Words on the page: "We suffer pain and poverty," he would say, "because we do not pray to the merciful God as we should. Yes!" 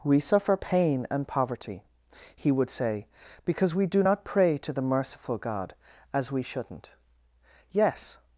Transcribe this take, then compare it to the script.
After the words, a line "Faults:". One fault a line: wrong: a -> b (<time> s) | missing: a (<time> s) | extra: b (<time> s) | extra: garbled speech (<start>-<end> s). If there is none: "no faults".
"We suffer pain and poverty," he would say, "because we do not pray to the merciful God as we shouldn't. Yes!"
Faults:
wrong: should -> shouldn't (6.4 s)